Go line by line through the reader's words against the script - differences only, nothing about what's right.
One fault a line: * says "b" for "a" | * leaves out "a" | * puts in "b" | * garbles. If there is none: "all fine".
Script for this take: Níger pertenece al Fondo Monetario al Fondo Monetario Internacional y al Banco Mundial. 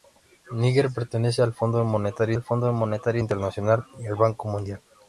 all fine